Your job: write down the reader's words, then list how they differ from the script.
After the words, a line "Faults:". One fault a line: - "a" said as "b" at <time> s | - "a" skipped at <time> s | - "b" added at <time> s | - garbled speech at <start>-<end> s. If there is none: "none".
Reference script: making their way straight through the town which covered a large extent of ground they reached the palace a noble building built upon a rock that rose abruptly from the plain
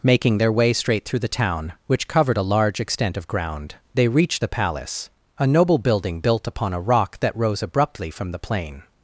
making their way straight through the town which covered a large extent of ground they reached the palace a noble building built upon a rock that rose abruptly from the plain
Faults:
none